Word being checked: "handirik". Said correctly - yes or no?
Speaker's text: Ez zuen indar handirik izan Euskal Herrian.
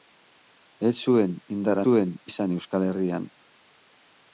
no